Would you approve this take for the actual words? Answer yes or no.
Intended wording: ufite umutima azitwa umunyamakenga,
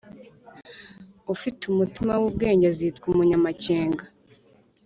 no